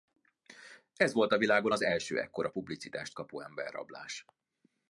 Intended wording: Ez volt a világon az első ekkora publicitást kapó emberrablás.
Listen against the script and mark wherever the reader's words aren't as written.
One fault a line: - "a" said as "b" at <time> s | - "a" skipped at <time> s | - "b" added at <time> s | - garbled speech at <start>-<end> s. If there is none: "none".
none